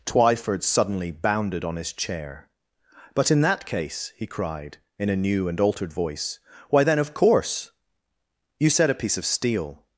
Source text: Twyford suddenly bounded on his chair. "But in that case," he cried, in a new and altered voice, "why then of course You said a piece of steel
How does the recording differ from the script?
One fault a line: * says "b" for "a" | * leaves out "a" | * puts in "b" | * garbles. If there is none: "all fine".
all fine